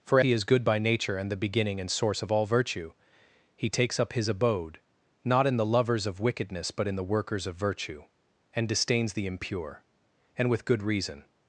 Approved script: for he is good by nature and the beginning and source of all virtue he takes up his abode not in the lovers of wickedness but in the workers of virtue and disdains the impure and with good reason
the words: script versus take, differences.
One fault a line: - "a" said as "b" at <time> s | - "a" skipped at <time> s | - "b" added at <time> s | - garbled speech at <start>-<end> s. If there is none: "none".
none